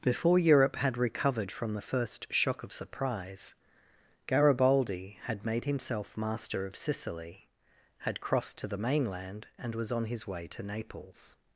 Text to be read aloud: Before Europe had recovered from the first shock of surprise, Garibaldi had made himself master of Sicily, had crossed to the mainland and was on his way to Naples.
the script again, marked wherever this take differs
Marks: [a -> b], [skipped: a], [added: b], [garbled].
Before Europe had recovered from the first shock of surprise, Garibaldi had made himself master of Sicily, had crossed to the mainland and was on his way to Naples.